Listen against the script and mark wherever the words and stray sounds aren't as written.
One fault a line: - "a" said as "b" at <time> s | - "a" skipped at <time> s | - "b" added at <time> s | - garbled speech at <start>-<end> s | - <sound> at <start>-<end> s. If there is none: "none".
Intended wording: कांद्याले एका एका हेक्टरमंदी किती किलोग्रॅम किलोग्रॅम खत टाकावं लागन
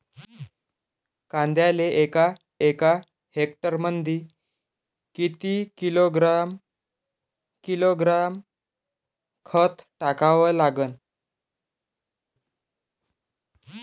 none